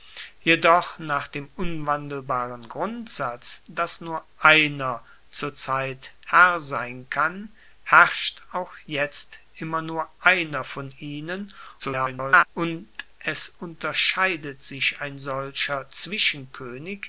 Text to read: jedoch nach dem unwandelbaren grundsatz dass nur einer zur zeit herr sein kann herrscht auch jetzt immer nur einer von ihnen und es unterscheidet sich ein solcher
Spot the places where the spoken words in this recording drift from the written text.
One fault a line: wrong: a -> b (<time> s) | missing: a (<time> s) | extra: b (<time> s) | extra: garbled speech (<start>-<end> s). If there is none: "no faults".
extra: garbled speech (11.8-12.5 s)